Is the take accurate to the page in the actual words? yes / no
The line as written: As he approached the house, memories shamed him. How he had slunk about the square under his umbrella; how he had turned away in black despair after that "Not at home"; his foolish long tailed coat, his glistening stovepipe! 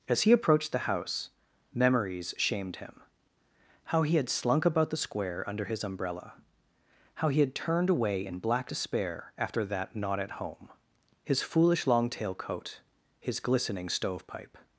no